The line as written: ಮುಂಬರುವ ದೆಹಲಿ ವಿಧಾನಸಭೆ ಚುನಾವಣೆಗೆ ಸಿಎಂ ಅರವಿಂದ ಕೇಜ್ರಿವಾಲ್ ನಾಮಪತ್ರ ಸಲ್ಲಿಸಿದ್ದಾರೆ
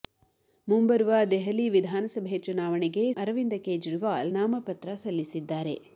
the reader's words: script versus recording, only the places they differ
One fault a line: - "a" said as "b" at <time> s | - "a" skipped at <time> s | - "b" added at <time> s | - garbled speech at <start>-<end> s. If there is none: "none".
- "ಸಿಎಂ" skipped at 3.1 s